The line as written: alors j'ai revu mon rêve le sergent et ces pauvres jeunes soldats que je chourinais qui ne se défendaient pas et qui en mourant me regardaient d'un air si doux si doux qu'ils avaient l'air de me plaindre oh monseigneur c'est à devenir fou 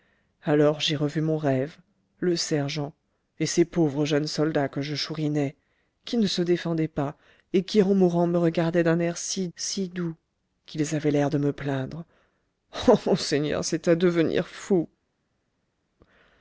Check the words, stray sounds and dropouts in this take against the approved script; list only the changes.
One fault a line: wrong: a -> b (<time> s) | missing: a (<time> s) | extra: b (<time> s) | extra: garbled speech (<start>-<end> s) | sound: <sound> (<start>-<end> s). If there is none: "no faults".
missing: doux (9.5 s)